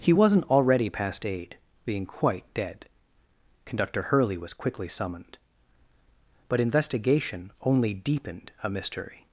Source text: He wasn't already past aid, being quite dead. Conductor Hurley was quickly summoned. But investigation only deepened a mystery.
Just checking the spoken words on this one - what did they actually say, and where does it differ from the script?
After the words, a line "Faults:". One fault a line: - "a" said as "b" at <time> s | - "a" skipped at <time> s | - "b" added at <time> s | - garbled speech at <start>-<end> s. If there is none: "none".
He wasn't already past aid, being quite dead. Conductor Hurley was quickly summoned. But investigation only deepened a mystery.
Faults:
none